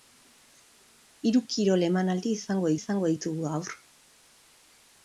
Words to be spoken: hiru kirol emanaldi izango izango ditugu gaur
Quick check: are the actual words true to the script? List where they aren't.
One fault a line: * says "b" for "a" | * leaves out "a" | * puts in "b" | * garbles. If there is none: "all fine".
all fine